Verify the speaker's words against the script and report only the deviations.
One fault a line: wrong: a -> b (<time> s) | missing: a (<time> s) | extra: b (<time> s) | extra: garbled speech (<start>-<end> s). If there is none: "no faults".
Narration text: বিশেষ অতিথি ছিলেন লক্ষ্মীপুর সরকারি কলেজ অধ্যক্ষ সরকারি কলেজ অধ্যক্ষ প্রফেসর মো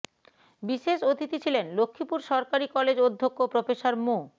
missing: সরকারি কলেজ অধ্যক্ষ (3.4 s)